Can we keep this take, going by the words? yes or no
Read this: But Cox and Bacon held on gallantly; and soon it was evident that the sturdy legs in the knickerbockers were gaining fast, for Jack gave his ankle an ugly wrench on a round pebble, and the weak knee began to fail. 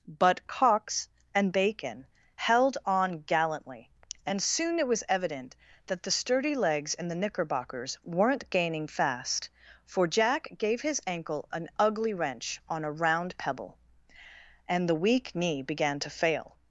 no